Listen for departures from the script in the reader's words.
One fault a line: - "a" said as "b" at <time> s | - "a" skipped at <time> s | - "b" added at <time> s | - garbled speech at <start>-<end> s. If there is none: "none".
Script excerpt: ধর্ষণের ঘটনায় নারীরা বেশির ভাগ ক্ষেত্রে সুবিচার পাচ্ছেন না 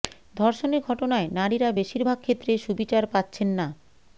none